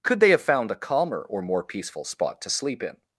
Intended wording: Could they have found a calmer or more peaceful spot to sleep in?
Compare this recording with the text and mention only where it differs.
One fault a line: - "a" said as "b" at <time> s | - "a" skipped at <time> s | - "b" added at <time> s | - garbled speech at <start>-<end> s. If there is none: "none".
none